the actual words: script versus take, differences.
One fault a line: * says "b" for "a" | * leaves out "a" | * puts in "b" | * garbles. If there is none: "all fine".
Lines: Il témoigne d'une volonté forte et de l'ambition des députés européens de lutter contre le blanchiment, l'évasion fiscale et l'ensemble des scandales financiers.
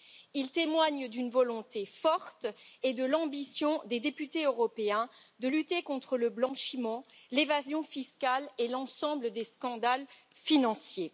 all fine